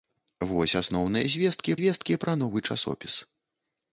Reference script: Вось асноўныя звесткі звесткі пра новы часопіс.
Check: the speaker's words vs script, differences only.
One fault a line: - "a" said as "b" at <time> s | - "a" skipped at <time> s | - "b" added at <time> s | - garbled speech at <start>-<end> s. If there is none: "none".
none